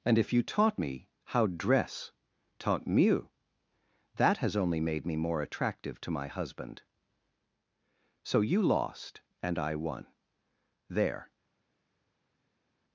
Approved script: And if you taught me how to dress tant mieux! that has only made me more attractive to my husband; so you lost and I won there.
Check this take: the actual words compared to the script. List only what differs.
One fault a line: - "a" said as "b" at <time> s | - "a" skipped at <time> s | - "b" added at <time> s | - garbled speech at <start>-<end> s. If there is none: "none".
- "to" skipped at 1.5 s